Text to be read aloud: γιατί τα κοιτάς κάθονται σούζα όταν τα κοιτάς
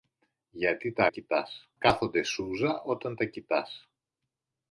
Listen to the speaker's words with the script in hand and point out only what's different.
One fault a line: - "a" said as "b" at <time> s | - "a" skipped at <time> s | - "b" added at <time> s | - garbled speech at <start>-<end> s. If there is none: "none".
none